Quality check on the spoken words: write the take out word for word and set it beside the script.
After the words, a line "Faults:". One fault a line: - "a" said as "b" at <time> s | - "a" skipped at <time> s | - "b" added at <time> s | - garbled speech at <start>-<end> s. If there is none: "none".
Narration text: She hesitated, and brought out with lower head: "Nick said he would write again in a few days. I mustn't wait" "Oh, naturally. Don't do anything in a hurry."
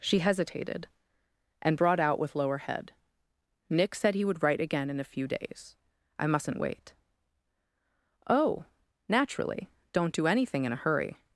She hesitated, and brought out with lower head: "Nick said he would write again in a few days. I mustn't wait" "Oh, naturally. Don't do anything in a hurry."
Faults:
none